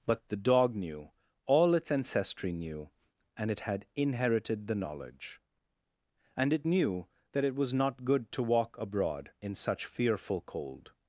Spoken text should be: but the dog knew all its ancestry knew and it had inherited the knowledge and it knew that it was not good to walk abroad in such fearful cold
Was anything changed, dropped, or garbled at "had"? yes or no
no